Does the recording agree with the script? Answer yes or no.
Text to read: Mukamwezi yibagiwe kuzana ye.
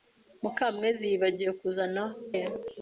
yes